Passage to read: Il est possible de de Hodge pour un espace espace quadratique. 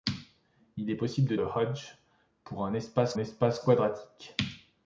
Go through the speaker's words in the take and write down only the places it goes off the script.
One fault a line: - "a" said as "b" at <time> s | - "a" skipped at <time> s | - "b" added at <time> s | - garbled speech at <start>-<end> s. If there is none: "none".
none